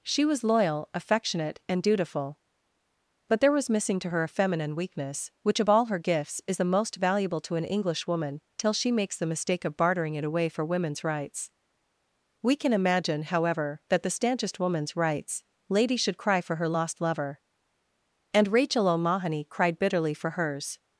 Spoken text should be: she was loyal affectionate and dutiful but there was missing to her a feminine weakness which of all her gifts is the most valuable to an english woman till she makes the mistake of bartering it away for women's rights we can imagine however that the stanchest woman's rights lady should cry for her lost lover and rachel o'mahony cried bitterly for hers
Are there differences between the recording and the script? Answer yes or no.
no